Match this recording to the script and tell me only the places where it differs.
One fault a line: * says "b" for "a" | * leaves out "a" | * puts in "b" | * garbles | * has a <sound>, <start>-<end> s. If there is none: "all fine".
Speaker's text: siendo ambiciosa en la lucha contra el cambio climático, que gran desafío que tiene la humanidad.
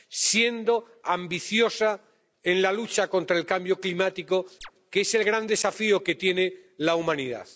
* has a chirp, 4.6-4.7 s
* puts in "es el"